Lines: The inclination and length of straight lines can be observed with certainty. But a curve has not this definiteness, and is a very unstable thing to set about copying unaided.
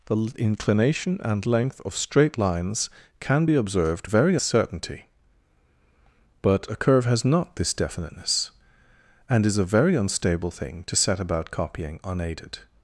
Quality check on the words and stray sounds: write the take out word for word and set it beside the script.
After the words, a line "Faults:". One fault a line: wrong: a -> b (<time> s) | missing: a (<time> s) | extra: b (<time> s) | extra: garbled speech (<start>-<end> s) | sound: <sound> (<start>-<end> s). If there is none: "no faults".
The inclination and length of straight lines can be observed very certainty. But a curve has not this definiteness, and is a very unstable thing to set about copying unaided.
Faults:
wrong: with -> very (4.0 s)